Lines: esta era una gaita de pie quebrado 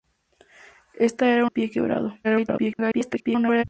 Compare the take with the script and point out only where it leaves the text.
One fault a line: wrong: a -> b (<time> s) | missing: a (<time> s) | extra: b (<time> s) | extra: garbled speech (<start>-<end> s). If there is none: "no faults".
missing: una gaita de (1.4 s)
extra: garbled speech (2.2-3.6 s)